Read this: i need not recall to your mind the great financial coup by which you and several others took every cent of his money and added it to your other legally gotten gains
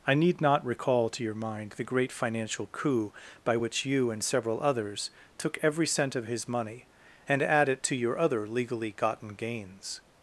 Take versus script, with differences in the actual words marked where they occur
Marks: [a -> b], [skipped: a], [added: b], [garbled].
i need not recall to your mind the great financial coup by which you and several others took every cent of his money and [added -> add] it to your other legally gotten gains